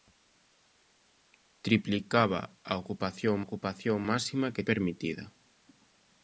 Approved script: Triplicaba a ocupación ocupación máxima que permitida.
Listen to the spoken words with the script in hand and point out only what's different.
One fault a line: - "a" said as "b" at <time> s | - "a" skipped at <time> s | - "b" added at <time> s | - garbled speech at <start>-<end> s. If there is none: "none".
none